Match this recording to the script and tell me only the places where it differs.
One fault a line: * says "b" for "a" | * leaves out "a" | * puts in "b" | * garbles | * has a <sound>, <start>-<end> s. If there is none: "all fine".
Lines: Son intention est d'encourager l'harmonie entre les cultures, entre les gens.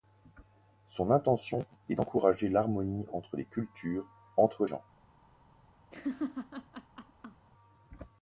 * leaves out "les"
* has a laugh, 5.9-7.5 s